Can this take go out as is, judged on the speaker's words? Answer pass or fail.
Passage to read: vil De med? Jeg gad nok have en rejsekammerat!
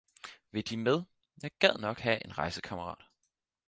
pass